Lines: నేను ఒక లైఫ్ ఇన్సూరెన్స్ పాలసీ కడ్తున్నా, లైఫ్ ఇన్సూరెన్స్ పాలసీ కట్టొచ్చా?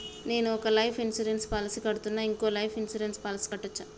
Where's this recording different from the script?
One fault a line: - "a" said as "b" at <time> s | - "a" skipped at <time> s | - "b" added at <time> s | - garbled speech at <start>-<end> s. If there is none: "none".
- "ఇంకో" added at 2.2 s